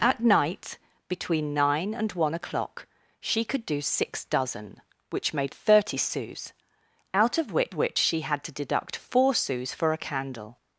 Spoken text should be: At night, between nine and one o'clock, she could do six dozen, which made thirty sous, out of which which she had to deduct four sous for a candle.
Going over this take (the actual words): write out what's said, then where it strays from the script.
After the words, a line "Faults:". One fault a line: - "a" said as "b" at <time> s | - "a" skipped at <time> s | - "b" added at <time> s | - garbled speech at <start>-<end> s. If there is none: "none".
At night, between nine and one o'clock, she could do six dozen, which made thirty sous, out of which which she had to deduct four sous for a candle.
Faults:
none